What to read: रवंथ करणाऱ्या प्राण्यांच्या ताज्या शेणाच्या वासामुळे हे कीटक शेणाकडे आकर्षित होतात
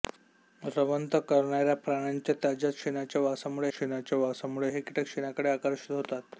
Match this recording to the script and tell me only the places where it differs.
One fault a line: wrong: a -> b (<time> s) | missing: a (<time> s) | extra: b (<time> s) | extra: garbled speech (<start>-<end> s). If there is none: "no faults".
extra: शेणाच्या वासामुळे (3.7 s)